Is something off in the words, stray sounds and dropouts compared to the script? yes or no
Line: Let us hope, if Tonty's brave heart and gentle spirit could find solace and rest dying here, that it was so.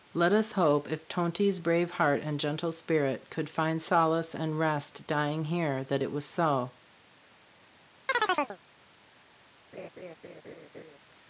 yes